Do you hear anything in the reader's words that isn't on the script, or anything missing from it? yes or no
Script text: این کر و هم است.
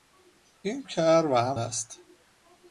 no